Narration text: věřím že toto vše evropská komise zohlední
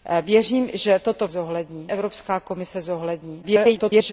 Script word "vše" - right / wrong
wrong